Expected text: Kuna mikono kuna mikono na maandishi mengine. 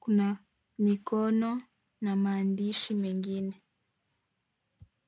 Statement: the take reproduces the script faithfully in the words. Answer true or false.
false